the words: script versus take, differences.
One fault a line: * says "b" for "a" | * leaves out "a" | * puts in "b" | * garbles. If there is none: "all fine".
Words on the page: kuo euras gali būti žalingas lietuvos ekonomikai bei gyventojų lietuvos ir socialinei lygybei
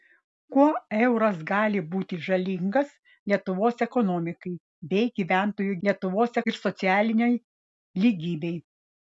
all fine